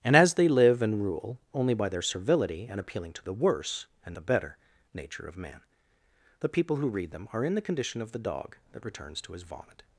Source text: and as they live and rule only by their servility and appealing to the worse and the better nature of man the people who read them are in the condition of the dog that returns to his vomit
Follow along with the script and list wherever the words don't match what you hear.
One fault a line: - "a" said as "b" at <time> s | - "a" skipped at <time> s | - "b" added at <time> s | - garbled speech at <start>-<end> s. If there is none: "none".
none